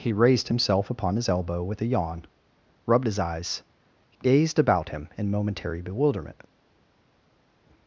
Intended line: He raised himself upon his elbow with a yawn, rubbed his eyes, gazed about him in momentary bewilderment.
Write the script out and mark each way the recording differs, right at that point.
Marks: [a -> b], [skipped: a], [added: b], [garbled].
He raised himself upon his elbow with a yawn, rubbed his eyes, gazed about him in momentary bewilderment.